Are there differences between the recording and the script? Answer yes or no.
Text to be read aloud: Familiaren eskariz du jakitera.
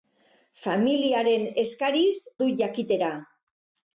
no